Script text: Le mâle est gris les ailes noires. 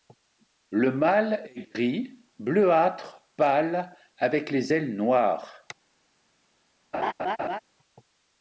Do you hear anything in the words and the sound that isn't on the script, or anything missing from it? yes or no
yes